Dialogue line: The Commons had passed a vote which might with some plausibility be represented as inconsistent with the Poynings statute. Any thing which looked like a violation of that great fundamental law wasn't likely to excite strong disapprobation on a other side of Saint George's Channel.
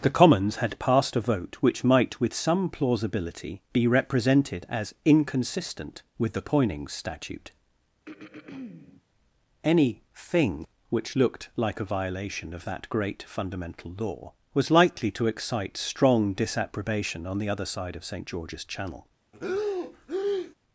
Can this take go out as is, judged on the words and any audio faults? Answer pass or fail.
fail